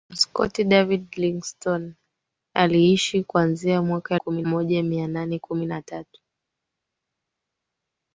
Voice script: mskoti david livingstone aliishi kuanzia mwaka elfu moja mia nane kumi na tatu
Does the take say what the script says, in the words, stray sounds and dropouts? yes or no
no